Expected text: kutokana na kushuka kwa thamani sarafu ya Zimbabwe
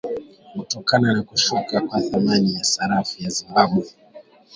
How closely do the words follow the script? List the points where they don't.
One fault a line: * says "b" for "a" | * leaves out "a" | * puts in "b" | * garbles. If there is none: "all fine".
* puts in "ya"